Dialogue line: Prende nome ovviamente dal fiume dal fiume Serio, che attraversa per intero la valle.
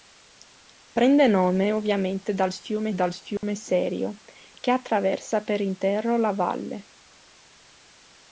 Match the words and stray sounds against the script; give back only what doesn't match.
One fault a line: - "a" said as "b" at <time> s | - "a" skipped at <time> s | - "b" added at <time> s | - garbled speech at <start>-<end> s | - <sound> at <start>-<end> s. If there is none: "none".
- dropout at 3.4-3.4 s